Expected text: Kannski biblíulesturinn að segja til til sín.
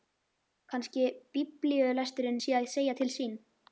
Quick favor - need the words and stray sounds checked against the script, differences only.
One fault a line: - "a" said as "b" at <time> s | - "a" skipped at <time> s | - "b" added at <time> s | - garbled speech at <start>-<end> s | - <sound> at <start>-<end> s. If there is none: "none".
- "sé" added at 2.4 s
- "til" skipped at 3.1 s